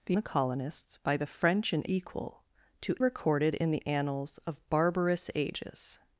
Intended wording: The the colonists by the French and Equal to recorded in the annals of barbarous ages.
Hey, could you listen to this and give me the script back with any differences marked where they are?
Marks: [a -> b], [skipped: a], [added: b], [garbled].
The the colonists by the French and Equal to recorded in the annals of barbarous ages.